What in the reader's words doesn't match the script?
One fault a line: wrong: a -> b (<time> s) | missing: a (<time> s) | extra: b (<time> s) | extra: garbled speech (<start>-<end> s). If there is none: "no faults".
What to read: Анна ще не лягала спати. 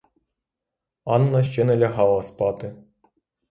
no faults